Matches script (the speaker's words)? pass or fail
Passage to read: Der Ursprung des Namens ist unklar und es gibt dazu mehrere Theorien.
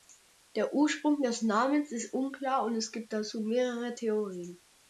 pass